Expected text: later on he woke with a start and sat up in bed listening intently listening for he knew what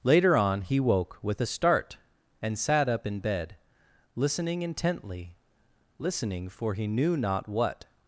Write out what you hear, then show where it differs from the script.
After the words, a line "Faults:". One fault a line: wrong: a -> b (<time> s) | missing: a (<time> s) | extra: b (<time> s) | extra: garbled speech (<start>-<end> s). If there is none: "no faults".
later on he woke with a start and sat up in bed listening intently listening for he knew not what
Faults:
extra: not (7.2 s)